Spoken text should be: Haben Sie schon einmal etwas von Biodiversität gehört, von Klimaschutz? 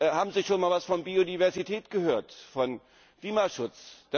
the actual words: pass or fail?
pass